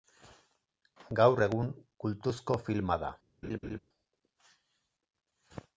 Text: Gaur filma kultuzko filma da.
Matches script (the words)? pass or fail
fail